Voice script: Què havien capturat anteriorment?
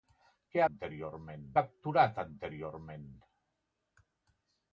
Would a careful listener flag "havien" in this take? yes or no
yes